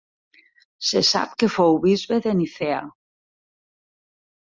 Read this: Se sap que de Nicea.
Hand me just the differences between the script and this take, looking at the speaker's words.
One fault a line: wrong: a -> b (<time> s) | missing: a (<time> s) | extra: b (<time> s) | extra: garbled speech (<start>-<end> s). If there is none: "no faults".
extra: fou bisbe (1.5 s)